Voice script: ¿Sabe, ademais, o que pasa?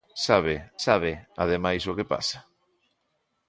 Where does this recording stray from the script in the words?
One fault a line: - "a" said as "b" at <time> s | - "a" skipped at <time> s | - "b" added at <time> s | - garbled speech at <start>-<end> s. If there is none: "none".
- "sabe" added at 0.9 s